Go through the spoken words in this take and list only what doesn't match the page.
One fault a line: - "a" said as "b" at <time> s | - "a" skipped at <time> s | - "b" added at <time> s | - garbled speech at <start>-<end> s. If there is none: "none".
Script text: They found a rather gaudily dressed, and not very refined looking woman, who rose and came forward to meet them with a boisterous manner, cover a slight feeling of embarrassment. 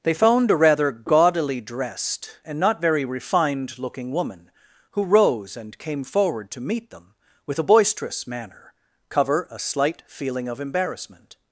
none